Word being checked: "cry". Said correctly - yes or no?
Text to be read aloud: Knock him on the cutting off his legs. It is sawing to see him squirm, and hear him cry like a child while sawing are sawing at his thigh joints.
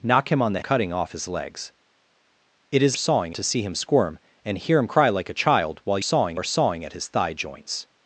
yes